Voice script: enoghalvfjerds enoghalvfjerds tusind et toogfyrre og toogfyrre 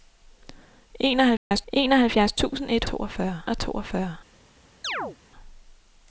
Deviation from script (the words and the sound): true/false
true